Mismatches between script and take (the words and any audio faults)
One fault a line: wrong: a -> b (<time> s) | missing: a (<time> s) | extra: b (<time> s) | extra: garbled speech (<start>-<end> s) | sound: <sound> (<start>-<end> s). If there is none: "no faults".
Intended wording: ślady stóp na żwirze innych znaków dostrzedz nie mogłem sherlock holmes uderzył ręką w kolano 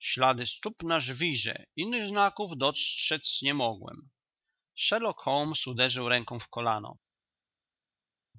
no faults